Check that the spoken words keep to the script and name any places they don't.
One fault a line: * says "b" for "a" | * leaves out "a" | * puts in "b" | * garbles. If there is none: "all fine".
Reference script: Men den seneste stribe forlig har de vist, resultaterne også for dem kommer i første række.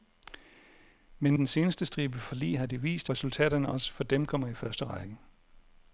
all fine